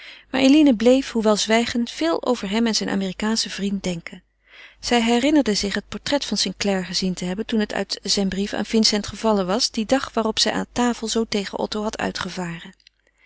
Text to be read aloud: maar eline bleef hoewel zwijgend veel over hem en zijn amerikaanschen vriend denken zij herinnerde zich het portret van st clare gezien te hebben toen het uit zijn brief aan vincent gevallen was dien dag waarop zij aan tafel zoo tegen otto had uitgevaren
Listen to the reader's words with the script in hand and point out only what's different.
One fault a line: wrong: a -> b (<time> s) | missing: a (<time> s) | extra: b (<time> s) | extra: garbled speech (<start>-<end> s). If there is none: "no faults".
no faults